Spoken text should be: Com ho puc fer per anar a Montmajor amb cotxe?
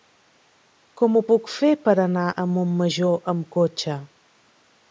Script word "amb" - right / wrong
right